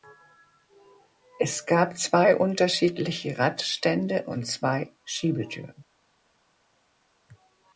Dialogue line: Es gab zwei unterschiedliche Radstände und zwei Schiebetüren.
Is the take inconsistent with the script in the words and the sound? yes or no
no